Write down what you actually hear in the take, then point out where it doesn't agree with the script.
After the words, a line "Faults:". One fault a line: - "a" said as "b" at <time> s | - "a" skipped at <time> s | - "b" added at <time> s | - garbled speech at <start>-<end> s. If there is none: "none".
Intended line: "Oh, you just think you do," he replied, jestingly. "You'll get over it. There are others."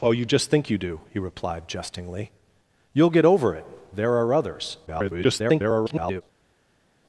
"Oh, you just think you do," he replied, jestingly. "You'll get over it. There are others." [garbled]
Faults:
- garbled speech at 4.9-6.2 s